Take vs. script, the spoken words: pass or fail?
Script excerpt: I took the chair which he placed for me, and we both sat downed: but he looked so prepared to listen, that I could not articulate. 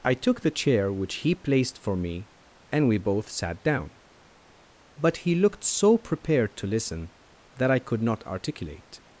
fail